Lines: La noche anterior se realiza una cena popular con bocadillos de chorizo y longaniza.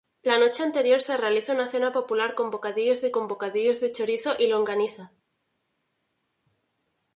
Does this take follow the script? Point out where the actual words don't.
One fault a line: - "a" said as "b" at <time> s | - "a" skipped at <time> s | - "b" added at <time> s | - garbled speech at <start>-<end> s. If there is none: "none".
- "con bocadillos de" added at 3.1 s